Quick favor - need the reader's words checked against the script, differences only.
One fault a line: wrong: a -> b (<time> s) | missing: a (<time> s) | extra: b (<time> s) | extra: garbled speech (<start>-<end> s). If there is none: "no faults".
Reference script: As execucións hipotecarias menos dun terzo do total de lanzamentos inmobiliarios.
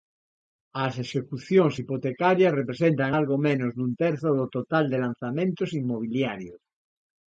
extra: representan algo (2.6 s)